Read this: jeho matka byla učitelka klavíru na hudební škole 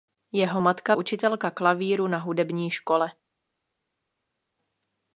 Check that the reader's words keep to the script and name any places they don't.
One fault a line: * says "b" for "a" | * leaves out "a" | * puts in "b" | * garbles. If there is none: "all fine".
* leaves out "byla"